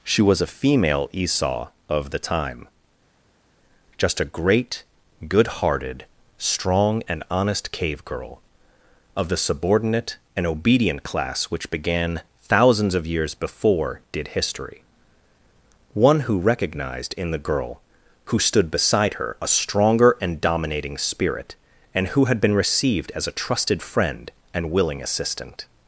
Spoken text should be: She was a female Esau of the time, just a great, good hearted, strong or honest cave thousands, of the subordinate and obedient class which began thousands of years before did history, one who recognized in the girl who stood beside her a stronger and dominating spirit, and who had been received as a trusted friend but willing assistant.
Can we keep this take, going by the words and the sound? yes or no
no